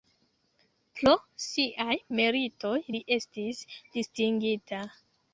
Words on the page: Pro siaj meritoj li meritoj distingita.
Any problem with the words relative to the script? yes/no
yes